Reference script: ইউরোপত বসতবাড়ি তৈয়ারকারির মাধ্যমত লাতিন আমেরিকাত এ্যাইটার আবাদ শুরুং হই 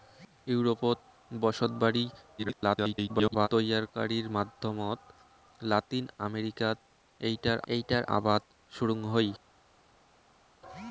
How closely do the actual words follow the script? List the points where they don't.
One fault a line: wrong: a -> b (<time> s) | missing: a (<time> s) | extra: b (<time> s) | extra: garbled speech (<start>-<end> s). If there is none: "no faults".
extra: garbled speech (2.4-3.5 s)
extra: এ্যাইটার (7.7 s)